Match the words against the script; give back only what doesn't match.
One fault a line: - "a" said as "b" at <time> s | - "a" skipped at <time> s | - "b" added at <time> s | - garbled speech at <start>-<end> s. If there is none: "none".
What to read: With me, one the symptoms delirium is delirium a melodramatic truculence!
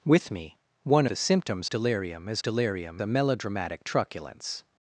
none